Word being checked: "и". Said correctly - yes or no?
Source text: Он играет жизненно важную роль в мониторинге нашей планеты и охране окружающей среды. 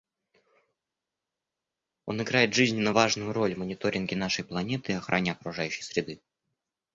yes